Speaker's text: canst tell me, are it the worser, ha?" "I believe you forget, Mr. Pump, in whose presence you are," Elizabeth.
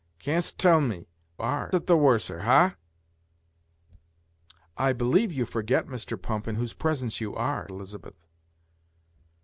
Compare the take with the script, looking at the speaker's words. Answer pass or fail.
pass